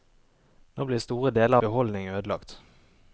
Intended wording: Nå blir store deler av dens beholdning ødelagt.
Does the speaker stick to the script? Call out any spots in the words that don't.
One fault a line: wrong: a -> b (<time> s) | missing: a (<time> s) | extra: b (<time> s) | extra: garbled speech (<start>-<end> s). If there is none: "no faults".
missing: av dens (1.6 s)